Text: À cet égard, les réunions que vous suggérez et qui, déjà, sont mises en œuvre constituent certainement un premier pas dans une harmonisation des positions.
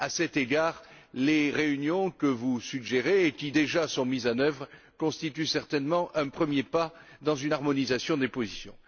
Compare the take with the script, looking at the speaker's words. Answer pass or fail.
pass